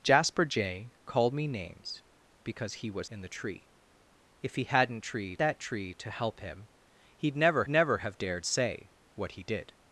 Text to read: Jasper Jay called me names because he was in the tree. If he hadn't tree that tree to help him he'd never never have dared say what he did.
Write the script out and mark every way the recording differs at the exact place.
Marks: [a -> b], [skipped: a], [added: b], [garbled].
Jasper Jay called me names because he was in the tree. If he hadn't tree that tree to help him he'd never never have dared say what he did.